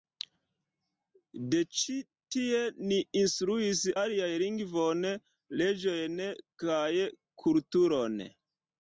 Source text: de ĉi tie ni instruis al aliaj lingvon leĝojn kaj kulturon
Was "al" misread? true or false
true